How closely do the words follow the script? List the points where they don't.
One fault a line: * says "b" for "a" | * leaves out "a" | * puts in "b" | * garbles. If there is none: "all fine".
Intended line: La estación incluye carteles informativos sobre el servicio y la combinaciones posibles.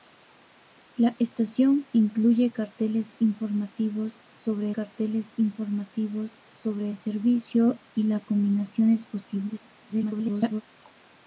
* puts in "carteles informativos sobre"
* garbles